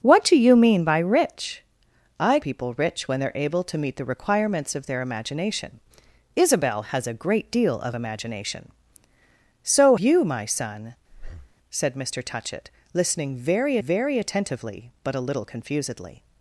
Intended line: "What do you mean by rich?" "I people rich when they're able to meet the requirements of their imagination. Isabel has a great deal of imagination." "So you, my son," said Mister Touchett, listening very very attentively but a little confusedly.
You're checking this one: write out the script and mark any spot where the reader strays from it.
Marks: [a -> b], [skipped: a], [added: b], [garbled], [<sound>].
"What do you mean by rich?" "I people rich when they're able to meet the requirements of their imagination. Isabel has a great deal of imagination." "So you, my son," [breath] said Mister Touchett, listening very very attentively but a little confusedly.